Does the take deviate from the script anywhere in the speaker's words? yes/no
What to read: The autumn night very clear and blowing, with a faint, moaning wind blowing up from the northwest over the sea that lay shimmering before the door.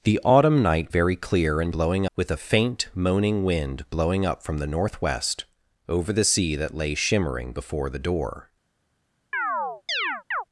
no